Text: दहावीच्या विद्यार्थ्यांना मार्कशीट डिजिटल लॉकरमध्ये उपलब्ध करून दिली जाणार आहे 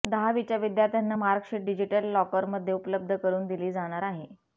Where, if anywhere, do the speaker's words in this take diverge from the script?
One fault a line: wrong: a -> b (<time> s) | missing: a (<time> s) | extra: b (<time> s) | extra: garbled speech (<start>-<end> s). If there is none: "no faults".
no faults